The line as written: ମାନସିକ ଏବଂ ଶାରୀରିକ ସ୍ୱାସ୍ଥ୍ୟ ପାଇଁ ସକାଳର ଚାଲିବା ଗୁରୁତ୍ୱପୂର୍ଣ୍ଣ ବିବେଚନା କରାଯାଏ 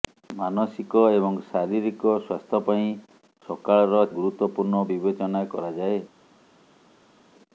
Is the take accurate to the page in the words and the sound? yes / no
no